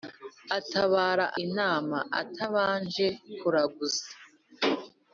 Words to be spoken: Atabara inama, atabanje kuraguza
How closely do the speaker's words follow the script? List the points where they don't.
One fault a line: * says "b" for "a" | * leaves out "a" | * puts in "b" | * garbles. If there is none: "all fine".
all fine